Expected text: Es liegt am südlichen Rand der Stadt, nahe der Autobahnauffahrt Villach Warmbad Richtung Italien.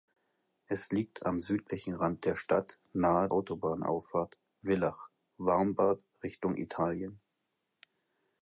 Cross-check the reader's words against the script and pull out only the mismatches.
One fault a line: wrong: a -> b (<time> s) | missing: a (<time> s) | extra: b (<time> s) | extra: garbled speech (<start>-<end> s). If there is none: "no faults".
missing: der (3.3 s)